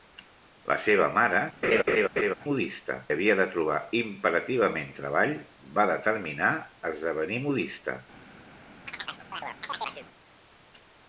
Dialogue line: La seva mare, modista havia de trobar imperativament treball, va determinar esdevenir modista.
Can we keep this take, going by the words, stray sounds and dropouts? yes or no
no